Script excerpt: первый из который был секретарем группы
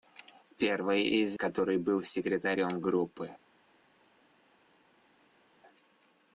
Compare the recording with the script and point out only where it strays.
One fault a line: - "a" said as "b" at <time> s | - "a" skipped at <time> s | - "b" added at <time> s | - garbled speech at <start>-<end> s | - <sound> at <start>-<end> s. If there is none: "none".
none